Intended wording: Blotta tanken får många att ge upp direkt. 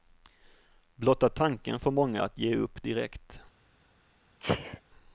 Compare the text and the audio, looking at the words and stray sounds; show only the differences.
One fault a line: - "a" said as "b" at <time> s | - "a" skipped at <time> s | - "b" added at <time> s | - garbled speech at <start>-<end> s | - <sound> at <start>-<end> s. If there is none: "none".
- sneeze at 4.4-4.8 s